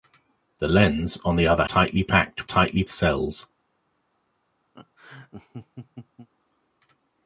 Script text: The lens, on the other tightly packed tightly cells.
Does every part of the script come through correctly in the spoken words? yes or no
yes